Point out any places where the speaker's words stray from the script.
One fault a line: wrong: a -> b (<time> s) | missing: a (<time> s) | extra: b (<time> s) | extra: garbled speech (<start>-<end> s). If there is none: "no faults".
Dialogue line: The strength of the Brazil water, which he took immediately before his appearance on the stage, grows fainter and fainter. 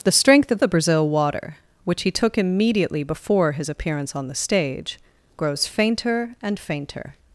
no faults